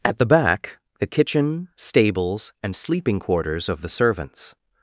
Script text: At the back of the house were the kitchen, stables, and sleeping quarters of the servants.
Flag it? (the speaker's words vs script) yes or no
yes